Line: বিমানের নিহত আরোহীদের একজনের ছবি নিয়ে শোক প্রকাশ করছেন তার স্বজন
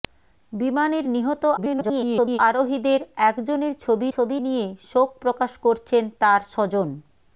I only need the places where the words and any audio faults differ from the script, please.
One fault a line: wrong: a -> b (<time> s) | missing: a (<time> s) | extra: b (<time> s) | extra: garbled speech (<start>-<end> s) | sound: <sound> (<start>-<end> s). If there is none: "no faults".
extra: garbled speech (1.6-2.4 s)
extra: ছবি (4.1 s)